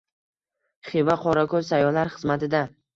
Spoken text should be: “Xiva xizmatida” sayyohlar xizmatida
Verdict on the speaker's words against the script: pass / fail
fail